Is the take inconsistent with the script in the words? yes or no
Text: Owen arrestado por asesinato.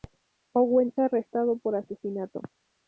no